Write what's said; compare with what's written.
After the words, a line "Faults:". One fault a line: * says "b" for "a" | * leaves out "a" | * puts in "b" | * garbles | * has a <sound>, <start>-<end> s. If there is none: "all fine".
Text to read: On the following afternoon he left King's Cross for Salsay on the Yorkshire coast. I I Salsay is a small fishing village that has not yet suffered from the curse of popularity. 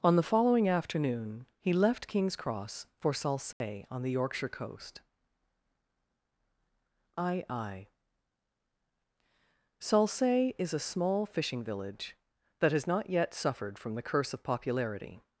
On the following afternoon he left King's Cross for Salsay on the Yorkshire coast. I I Salsay is a small fishing village that has not yet suffered from the curse of popularity.
Faults:
* has a dropout, 3.5-3.6 s